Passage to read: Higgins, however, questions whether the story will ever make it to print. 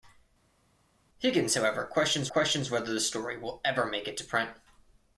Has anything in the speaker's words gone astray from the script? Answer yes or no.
yes